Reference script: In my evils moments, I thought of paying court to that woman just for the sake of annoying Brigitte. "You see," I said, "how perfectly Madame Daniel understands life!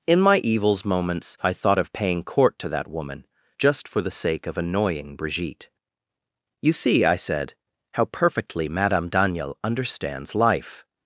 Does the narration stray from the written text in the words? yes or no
no